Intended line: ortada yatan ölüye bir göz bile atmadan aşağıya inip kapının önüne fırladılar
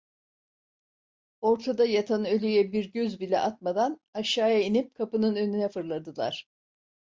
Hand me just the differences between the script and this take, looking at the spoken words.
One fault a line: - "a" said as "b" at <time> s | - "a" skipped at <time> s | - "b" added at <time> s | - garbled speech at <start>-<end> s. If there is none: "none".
none